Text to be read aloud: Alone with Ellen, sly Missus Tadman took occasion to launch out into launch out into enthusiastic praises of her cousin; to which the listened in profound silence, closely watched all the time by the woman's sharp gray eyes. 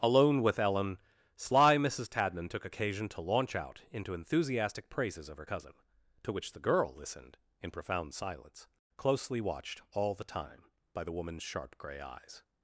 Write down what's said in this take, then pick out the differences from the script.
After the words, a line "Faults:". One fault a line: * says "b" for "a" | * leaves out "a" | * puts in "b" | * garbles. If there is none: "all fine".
Alone with Ellen, sly Missus Tadman took occasion to launch out into enthusiastic praises of her cousin; to which the girl listened in profound silence, closely watched all the time by the woman's sharp gray eyes.
Faults:
* leaves out "launch out into"
* puts in "girl"